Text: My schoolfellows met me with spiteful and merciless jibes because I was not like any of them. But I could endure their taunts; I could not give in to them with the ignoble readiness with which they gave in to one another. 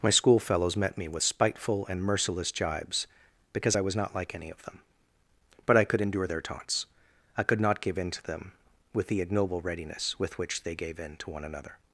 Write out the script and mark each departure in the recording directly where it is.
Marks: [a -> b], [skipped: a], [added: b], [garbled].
My schoolfellows met me with spiteful and merciless jibes because I was not like any of them. But I could endure their taunts; I could not give in to them with the ignoble readiness with which they gave in to one another.